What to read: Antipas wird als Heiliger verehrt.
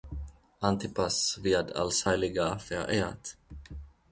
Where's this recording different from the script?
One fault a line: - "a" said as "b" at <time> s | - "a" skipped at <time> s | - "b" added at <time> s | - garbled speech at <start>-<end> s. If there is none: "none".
none